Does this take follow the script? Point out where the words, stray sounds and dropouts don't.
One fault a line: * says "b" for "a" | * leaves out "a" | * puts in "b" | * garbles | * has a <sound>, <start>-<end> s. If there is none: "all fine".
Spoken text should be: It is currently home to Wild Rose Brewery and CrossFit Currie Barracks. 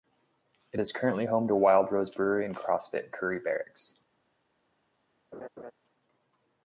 * has a laugh, 5.3-5.7 s